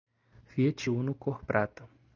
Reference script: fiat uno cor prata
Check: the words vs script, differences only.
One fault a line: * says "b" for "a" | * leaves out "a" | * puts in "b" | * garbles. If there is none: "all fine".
all fine